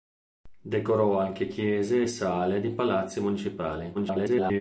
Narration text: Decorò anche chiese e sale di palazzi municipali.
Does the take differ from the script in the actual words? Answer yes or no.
yes